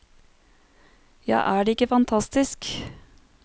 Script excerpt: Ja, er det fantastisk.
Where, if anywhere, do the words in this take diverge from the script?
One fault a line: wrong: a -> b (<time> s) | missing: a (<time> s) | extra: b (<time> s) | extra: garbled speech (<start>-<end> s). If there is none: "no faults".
extra: ikke (1.7 s)